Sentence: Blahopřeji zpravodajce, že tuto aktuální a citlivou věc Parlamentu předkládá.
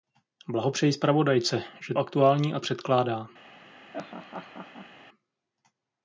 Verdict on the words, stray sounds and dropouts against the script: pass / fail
fail